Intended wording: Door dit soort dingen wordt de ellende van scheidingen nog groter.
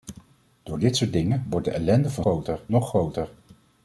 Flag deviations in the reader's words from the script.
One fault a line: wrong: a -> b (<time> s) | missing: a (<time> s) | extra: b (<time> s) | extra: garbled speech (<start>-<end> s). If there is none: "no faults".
wrong: scheidingen -> groter (2.2 s)